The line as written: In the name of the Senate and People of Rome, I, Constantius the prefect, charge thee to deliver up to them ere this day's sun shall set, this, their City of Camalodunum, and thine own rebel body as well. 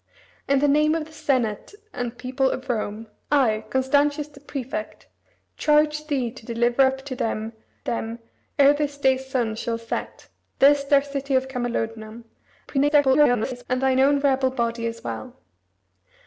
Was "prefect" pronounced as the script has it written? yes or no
yes